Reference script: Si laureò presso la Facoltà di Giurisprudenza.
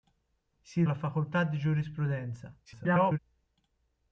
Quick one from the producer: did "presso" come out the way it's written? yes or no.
no